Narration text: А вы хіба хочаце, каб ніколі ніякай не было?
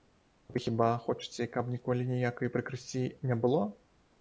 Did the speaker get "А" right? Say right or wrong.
right